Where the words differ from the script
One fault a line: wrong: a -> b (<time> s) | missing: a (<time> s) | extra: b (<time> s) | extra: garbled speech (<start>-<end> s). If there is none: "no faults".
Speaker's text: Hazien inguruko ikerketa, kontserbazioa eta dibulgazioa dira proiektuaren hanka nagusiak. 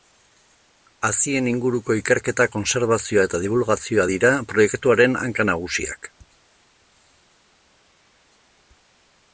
no faults